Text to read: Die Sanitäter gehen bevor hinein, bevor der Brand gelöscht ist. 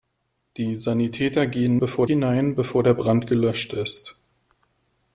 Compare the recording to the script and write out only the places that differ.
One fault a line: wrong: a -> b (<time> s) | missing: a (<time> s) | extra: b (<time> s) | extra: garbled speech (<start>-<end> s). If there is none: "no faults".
no faults